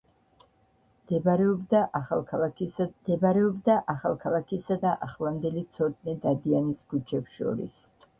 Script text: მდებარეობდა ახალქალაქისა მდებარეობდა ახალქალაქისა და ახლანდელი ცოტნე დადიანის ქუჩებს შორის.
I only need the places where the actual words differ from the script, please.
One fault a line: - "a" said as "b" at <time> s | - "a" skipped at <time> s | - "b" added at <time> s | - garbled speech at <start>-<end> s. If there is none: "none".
none